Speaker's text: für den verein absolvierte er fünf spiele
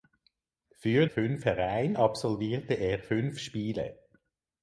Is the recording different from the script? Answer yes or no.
yes